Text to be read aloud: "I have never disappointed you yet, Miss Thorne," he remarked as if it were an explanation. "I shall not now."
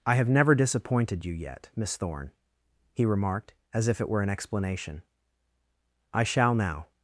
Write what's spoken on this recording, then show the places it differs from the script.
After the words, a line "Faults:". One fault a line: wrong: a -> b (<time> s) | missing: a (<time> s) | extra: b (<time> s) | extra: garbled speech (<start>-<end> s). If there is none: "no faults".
"I have never disappointed you yet, Miss Thorne," he remarked as if it were an explanation. "I shall now."
Faults:
missing: not (6.5 s)